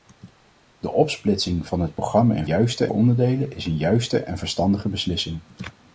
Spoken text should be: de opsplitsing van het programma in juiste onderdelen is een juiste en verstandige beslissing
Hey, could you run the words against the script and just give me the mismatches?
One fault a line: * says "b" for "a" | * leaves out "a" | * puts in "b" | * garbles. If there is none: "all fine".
all fine